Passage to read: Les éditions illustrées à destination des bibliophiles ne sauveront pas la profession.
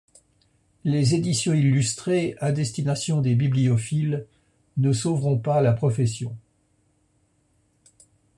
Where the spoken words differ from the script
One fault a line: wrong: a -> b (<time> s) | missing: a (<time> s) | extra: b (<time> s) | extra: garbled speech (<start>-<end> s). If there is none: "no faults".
no faults